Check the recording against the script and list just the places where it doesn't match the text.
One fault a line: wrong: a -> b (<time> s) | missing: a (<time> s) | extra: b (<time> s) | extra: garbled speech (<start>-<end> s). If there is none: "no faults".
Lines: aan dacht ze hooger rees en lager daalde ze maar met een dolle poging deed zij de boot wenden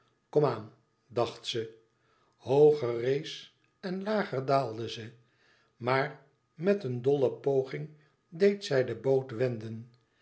no faults